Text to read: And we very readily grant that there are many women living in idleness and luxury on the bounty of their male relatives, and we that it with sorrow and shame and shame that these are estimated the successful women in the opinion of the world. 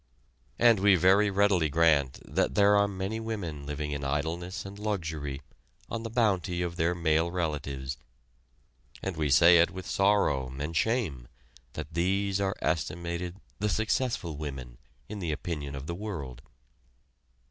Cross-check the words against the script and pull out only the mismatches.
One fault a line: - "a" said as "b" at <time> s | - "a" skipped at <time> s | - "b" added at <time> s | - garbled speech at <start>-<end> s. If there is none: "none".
- "that" said as "say" at 9.3 s
- "and shame" skipped at 11.3 s